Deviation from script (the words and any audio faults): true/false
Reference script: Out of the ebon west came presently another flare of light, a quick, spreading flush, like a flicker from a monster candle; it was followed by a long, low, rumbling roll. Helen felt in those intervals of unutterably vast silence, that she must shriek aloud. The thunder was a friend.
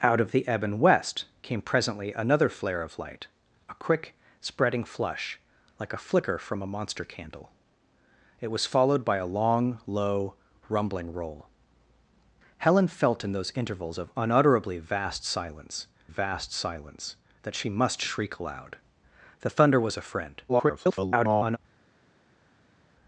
true